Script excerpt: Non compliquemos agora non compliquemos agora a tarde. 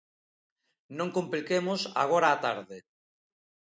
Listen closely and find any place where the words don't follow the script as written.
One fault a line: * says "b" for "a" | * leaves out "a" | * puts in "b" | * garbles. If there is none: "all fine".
* leaves out "non compliquemos agora"